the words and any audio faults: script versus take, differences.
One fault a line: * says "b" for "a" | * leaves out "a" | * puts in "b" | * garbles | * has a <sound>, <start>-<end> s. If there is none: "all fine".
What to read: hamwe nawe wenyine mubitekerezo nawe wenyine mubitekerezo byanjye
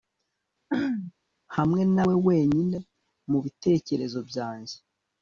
* has a throat clearing, 0.7-1.1 s
* leaves out "nawe wenyine mubitekerezo"